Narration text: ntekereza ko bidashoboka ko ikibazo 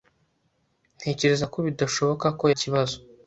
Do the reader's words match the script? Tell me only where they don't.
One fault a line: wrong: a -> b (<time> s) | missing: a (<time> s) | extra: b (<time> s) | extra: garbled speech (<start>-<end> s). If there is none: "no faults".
no faults